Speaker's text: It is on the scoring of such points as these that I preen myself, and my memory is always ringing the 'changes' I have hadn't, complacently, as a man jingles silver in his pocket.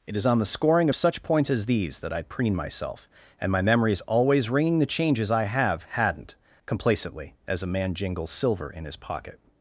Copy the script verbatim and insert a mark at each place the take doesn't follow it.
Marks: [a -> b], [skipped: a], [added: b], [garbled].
It is on the scoring of such points as these that I preen myself, and my memory is always ringing the 'changes' I have hadn't, complacently, as a man jingles silver in his pocket.